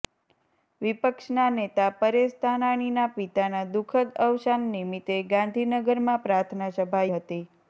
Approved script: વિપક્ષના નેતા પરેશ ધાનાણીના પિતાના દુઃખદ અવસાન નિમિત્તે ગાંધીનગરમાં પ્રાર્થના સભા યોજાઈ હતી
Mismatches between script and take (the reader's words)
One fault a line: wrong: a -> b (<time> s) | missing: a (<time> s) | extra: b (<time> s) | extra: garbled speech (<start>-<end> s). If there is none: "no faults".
missing: યોજાઈ (7.0 s)